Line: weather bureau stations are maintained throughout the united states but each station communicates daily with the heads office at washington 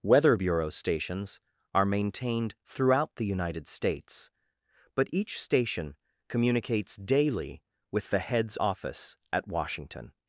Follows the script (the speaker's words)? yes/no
yes